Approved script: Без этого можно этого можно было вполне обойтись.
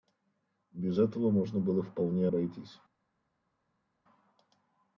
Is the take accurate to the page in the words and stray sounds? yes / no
no